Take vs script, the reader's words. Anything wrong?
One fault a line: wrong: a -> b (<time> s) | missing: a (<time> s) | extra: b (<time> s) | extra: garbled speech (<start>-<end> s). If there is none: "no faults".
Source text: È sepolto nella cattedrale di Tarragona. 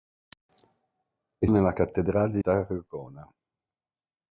missing: sepolto (1.4 s)
missing: di (2.4 s)